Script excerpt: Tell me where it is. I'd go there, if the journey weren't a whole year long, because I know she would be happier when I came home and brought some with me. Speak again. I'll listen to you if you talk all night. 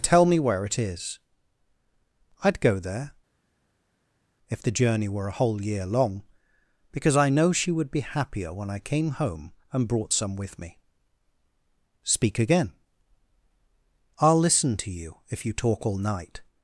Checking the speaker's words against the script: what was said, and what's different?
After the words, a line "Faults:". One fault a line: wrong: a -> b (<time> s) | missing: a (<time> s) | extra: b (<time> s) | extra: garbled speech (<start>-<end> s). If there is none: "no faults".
Tell me where it is. I'd go there, if the journey were a whole year long, because I know she would be happier when I came home and brought some with me. Speak again. I'll listen to you if you talk all night.
Faults:
wrong: weren't -> were (5.1 s)